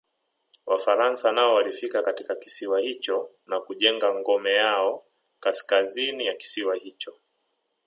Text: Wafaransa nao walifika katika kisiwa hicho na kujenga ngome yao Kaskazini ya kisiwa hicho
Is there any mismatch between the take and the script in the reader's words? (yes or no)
no